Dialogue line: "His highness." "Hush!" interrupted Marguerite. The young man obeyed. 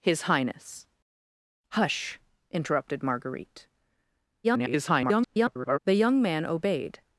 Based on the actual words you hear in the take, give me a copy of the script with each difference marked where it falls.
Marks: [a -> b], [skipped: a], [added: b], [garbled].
"His highness." "Hush!" interrupted Marguerite. [garbled] The young man obeyed.